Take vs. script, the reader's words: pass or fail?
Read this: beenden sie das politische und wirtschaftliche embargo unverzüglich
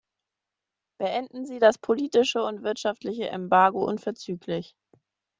pass